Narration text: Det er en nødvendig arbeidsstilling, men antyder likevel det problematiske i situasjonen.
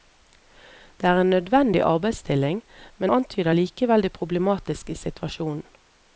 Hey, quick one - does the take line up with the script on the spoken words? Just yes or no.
yes